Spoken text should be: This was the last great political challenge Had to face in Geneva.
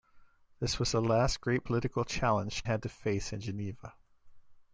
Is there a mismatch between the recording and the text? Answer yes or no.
no